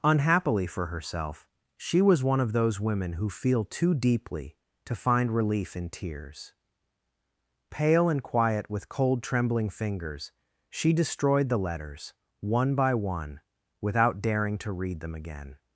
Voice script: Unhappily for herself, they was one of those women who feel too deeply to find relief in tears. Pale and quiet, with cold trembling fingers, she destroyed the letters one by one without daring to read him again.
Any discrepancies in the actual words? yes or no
yes